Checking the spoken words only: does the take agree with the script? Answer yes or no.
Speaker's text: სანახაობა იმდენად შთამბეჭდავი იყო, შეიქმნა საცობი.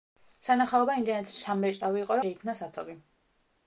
yes